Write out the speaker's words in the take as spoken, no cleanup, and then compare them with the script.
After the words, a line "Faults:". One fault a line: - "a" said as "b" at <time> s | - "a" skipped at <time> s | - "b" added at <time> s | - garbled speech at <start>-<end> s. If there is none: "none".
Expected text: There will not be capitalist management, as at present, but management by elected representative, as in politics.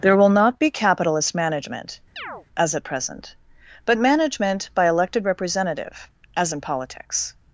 There will not be capitalist management, as at present, but management by elected representative, as in politics.
Faults:
none